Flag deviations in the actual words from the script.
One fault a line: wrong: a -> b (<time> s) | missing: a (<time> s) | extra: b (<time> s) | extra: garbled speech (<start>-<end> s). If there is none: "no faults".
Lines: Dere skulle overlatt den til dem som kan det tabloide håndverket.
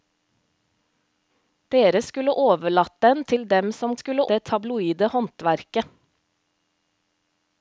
wrong: kan -> skulle (4.0 s)